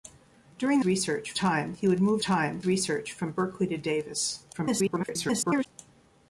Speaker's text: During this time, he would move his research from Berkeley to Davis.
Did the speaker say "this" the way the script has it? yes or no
no